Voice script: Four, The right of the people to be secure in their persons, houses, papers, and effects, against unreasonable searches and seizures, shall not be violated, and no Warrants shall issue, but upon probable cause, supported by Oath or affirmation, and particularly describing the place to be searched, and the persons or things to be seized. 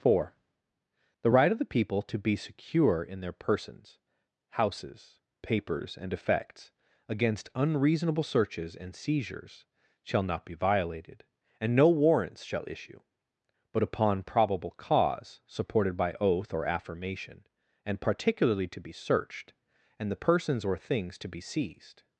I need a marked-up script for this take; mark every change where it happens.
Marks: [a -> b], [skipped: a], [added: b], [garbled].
Four, The right of the people to be secure in their persons, houses, papers, and effects, against unreasonable searches and seizures, shall not be violated, and no Warrants shall issue, but upon probable cause, supported by Oath or affirmation, and particularly [skipped: describing the place] to be searched, and the persons or things to be seized.